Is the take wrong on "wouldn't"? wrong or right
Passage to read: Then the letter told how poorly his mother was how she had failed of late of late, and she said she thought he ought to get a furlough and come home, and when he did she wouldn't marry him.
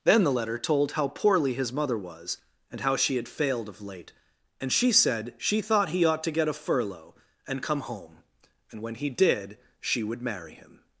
wrong